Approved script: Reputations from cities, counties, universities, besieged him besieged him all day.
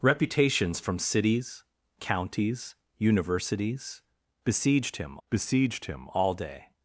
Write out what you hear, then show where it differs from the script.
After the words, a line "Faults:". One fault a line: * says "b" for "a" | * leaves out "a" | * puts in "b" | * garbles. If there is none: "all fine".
Reputations from cities, counties, universities, besieged him besieged him all day.
Faults:
all fine